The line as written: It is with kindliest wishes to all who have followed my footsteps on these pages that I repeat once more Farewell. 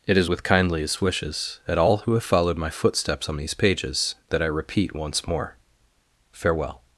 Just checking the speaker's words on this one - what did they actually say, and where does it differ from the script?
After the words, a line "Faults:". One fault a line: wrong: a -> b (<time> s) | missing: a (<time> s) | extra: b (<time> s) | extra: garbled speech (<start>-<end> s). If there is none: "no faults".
It is with kindliest wishes at all who have followed my footsteps on these pages that I repeat once more Farewell.
Faults:
wrong: to -> at (1.7 s)